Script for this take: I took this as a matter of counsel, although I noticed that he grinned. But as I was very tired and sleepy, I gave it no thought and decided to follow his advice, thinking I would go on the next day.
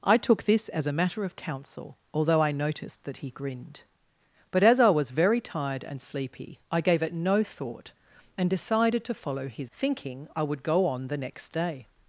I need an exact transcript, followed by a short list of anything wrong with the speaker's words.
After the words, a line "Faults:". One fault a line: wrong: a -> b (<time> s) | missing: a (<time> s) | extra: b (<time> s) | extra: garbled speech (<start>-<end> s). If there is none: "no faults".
I took this as a matter of counsel, although I noticed that he grinned. But as I was very tired and sleepy, I gave it no thought and decided to follow his thinking I would go on the next day.
Faults:
missing: advice (9.7 s)